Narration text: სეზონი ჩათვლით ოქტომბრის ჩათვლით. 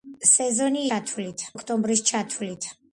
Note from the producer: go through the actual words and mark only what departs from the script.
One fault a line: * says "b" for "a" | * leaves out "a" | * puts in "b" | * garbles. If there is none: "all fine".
all fine